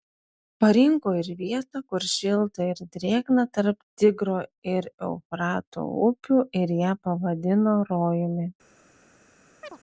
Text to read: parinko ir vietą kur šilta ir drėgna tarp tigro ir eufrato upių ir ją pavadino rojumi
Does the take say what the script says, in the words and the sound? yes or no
no